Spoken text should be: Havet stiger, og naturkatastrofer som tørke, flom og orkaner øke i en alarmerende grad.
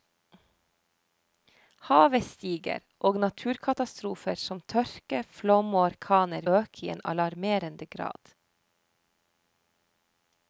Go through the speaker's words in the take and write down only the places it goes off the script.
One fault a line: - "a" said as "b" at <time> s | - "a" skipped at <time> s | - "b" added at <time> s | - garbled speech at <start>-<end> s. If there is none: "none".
none